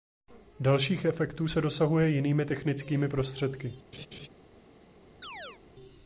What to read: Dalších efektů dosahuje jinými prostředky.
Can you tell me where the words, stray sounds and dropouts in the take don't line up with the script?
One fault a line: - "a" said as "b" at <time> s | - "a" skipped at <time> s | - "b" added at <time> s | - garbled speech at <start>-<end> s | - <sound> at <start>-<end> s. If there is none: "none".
- "se" added at 1.4 s
- "technickými" added at 2.4 s
- laugh at 3.9-4.3 s
- chirp at 5.2-5.6 s